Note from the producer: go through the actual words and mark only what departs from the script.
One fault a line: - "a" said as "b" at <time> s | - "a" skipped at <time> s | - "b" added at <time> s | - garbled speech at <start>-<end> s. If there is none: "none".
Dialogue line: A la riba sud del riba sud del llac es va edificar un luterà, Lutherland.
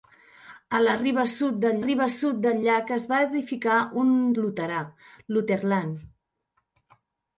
none